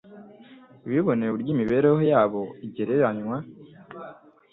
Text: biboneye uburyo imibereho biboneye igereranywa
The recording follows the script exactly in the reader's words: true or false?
false